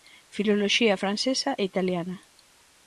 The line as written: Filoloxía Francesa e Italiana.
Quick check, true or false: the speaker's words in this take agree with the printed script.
true